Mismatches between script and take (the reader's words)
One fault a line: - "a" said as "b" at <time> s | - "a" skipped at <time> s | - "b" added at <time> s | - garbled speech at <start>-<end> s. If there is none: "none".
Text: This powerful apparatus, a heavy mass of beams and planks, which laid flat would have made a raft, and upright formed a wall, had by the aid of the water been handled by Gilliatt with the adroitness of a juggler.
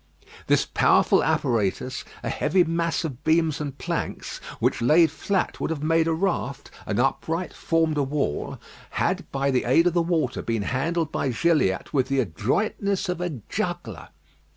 none